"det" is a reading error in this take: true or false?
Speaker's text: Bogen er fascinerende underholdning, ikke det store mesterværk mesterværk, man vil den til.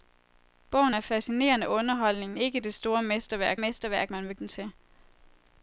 false